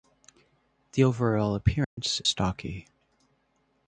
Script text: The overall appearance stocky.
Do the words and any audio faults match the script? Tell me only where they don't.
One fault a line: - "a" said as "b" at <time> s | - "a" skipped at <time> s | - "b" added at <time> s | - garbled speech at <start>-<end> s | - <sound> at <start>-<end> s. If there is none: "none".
- dropout at 1.8-2.0 s